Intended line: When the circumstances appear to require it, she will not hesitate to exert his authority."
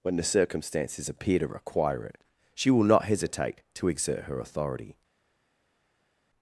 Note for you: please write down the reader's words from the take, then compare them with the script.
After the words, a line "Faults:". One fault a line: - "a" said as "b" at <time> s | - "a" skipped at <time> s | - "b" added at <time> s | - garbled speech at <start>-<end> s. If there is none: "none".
When the circumstances appear to require it, she will not hesitate to exert her authority."
Faults:
- "his" said as "her" at 4.2 s